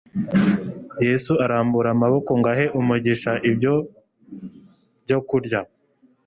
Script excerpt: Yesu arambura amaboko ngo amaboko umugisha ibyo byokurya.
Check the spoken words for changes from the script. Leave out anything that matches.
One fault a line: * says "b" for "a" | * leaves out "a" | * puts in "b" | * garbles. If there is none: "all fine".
* says "ahe" for "amaboko"